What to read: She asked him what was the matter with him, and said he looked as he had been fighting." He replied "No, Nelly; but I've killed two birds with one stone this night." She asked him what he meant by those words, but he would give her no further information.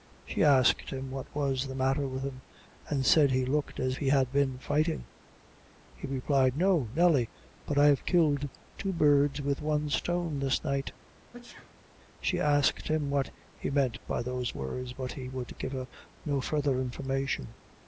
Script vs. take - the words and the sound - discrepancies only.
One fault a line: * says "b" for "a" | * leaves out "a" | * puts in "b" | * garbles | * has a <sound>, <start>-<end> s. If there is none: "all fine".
* has a sneeze, 11.3-11.9 s